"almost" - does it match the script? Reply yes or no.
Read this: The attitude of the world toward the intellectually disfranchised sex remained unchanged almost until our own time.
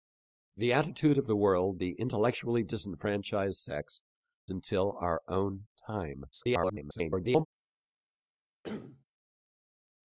no